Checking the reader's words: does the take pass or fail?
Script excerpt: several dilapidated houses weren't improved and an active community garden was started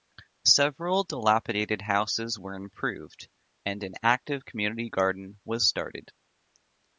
fail